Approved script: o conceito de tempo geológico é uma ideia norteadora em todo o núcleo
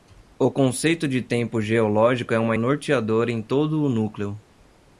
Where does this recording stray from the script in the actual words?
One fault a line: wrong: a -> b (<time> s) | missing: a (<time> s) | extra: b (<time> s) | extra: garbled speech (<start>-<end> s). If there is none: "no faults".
missing: ideia (2.6 s)